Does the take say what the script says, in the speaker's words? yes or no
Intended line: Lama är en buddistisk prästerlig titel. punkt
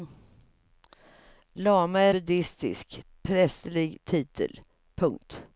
no